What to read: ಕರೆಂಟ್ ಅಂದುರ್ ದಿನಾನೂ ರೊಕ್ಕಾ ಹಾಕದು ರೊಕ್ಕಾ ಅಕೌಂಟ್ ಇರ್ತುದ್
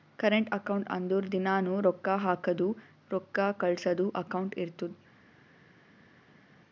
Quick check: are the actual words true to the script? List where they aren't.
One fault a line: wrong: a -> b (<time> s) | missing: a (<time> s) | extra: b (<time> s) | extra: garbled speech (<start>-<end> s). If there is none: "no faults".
extra: ಅಕೌಂಟ್ (0.5 s)
extra: ಕಳ್ಸದು (3.6 s)